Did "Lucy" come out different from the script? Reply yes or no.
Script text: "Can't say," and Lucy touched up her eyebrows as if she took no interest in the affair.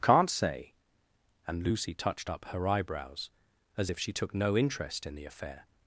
no